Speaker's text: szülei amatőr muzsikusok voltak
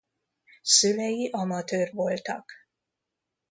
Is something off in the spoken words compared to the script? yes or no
yes